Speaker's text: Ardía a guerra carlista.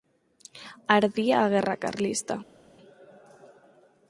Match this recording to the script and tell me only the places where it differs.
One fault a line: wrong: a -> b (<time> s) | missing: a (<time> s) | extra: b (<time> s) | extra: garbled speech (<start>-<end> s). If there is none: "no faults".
no faults